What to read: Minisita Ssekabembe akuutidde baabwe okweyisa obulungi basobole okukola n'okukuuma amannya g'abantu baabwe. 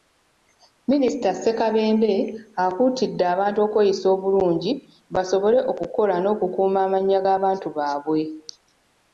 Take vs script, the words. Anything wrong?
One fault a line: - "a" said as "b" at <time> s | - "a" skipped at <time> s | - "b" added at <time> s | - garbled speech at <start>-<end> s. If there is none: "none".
- "baabwe" said as "abantu" at 3.3 s